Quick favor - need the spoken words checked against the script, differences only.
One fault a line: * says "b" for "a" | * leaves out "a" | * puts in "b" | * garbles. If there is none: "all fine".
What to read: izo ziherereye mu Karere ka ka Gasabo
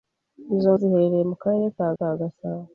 all fine